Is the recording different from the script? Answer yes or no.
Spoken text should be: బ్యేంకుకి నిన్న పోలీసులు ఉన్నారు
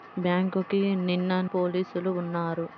no